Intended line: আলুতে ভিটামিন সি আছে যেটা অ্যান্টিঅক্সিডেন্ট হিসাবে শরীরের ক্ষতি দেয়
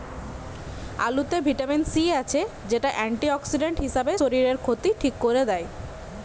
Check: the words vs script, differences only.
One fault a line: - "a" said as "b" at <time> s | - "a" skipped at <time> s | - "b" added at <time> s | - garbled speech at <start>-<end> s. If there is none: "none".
- "ঠিক কোরে" added at 5.0 s